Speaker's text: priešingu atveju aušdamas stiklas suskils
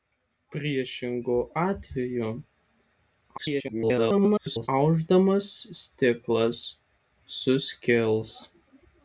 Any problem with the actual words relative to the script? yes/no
yes